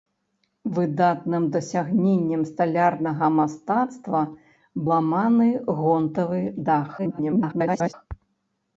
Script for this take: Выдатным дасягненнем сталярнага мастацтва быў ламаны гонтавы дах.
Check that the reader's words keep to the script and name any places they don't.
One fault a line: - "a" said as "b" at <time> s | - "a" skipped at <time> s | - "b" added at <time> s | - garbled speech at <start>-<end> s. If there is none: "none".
- "быў" skipped at 4.2 s
- garbled speech at 7.0-7.9 s